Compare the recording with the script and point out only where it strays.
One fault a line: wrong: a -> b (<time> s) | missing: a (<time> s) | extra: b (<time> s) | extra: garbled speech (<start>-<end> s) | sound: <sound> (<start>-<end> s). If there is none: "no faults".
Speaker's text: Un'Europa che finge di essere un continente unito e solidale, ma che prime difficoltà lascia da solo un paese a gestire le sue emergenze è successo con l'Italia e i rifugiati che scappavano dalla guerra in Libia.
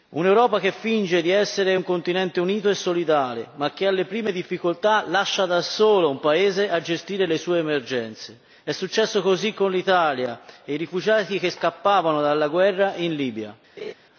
extra: alle (3.9 s)
extra: così (9.2 s)
sound: laugh (13.8-13.9 s)